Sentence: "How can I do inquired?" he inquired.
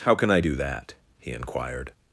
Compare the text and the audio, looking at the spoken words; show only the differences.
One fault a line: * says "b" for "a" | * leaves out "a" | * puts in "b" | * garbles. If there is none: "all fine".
* says "that" for "inquired"